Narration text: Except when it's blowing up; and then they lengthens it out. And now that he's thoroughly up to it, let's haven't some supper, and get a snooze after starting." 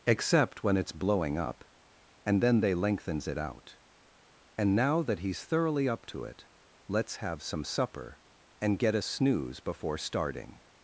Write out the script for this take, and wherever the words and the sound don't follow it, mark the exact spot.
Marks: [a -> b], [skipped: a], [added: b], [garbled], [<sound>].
Except when it's blowing up; and then they lengthens it out. And now that he's thoroughly up to it, let's [haven't -> have] some supper, and get a snooze [after -> before] starting."